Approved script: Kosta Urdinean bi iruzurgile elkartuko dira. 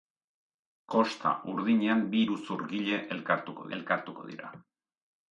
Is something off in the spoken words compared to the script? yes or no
yes